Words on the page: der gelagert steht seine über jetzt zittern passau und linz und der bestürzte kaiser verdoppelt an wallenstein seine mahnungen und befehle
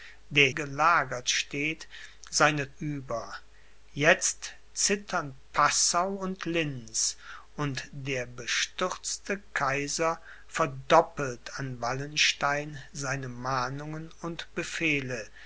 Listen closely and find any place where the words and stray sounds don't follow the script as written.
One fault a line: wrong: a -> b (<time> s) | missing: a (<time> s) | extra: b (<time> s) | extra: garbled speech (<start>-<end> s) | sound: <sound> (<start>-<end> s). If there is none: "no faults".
no faults